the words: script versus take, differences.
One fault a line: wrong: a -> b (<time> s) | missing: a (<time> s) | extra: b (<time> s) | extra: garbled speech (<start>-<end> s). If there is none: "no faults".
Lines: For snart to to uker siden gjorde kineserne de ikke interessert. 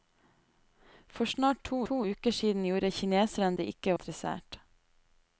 no faults